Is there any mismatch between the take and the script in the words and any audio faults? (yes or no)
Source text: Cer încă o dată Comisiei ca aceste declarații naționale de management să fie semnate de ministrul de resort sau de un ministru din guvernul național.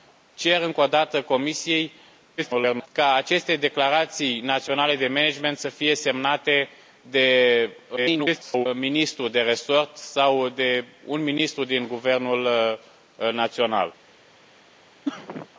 yes